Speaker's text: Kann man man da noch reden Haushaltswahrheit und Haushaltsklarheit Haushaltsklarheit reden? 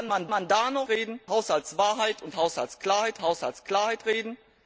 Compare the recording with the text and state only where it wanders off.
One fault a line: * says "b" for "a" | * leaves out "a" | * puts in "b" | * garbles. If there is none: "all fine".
all fine